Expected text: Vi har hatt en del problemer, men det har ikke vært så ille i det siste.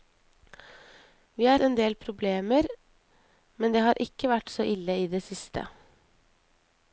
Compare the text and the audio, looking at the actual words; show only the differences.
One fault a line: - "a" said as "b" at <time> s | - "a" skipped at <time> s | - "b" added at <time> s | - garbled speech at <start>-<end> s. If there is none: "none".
- "hatt" skipped at 1.6 s